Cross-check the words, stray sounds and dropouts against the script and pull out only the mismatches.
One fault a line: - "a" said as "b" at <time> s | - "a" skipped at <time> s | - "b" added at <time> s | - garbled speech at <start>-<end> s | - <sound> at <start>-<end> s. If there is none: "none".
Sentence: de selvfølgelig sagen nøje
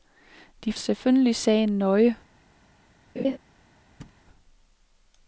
- laugh at 3.2-3.4 s
- thud at 4.0-4.2 s